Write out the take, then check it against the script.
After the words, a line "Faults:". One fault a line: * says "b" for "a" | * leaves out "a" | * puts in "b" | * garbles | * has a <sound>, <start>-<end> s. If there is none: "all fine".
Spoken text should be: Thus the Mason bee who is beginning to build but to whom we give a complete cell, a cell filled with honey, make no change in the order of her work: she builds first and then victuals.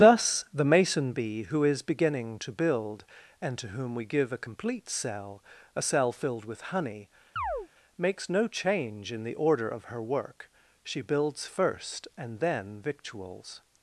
Thus the Mason bee who is beginning to build and to whom we give a complete cell, a cell filled with honey, makes no change in the order of her work: she builds first and then victuals.
Faults:
* says "and" for "but"
* has a chirp, 7.4-7.7 s
* says "makes" for "make"